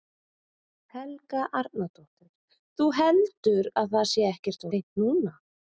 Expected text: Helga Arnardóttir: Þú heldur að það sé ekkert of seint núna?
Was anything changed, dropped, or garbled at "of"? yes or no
yes